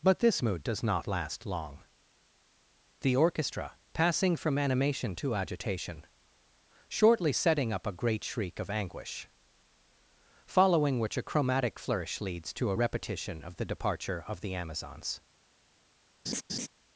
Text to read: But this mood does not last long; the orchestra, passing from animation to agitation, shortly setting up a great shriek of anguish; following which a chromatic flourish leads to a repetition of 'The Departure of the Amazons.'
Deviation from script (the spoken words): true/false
false